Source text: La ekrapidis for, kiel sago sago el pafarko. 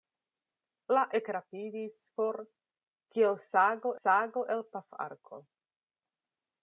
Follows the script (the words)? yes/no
yes